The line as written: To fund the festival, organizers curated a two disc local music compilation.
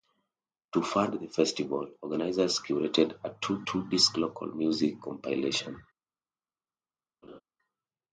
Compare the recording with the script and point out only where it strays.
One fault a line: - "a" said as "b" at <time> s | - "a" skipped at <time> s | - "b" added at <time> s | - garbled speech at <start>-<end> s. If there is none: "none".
- "two" added at 3.6 s